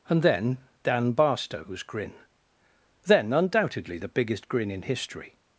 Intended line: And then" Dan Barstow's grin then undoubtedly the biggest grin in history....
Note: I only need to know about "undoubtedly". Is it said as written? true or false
true